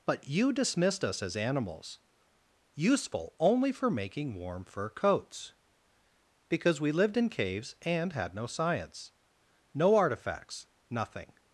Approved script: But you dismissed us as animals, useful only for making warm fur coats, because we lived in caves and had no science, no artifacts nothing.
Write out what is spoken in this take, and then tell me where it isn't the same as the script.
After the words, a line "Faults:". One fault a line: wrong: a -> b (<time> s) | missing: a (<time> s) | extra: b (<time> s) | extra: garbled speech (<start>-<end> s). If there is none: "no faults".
But you dismissed us as animals, useful only for making warm fur coats, because we lived in caves and had no science, no artifacts nothing.
Faults:
no faults